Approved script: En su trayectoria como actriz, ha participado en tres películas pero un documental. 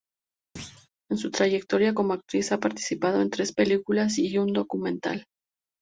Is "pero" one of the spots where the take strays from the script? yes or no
yes